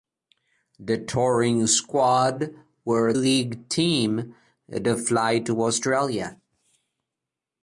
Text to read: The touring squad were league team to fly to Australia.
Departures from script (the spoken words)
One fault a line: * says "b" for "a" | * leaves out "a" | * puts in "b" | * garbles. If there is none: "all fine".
all fine